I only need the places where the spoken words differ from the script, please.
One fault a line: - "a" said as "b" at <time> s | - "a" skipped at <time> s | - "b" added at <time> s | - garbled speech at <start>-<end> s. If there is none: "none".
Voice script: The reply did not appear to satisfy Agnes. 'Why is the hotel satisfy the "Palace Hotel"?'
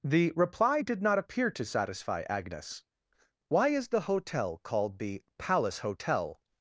- "satisfy" said as "called" at 4.6 s